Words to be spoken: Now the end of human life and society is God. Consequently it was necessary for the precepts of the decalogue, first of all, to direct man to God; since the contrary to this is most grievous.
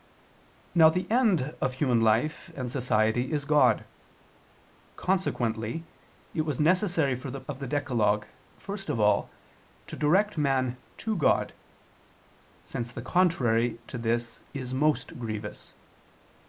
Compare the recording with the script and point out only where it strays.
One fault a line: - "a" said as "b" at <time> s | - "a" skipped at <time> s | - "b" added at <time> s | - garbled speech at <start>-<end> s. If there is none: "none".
- "precepts" skipped at 7.4 s